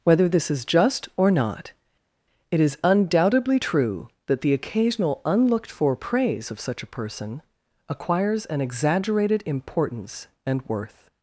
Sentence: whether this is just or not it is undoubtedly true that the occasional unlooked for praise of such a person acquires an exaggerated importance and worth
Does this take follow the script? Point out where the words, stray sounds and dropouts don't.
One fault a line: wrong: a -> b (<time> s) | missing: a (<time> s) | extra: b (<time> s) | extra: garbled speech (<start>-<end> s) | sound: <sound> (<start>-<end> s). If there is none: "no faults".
no faults